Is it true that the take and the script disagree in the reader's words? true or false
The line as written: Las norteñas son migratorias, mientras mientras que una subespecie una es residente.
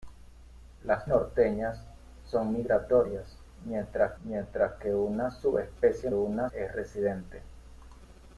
false